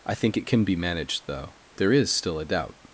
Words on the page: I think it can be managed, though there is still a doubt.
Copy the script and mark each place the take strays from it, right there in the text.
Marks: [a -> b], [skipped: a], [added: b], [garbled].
I think it can be managed, though there is still a doubt.